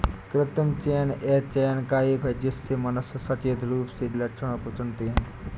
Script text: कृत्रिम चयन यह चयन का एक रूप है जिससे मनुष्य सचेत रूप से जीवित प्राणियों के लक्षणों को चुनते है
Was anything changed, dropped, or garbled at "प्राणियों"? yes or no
yes